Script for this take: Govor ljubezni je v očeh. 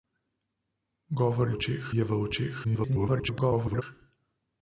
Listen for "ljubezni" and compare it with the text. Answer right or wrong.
wrong